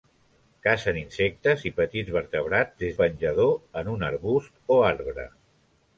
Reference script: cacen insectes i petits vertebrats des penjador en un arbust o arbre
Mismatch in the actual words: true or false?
false